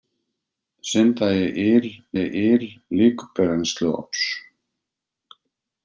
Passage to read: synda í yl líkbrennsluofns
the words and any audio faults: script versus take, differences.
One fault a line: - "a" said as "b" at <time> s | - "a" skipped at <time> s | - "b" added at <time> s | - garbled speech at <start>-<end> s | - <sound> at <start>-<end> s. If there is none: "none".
- "í yl" added at 2.2 s